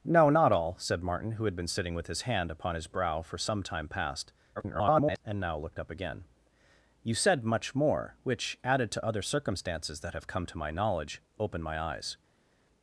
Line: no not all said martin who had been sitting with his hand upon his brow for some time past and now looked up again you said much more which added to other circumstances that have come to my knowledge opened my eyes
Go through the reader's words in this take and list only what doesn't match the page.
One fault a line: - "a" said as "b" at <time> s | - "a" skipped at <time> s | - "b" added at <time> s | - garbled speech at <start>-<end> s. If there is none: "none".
- garbled speech at 4.6-5.2 s